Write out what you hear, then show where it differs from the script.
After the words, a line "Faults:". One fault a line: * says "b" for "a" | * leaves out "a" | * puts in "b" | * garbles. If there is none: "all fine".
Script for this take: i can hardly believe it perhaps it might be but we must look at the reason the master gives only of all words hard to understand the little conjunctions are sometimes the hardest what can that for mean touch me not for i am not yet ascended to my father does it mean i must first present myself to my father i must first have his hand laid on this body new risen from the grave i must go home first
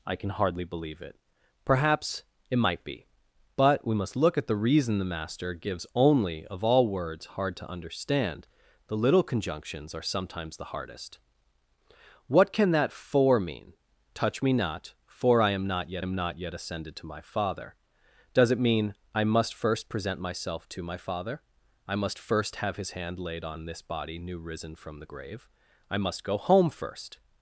i can hardly believe it perhaps it might be but we must look at the reason the master gives only of all words hard to understand the little conjunctions are sometimes the hardest what can that for mean touch me not for i am not yet am not yet ascended to my father does it mean i must first present myself to my father i must first have his hand laid on this body new risen from the grave i must go home first
Faults:
* puts in "am not yet"